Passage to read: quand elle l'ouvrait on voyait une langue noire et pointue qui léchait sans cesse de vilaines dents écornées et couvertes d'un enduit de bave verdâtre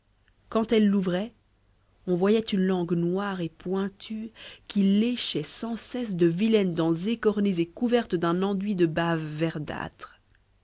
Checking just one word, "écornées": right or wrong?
right